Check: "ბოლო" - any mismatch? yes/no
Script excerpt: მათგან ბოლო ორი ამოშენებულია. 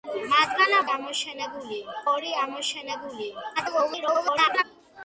yes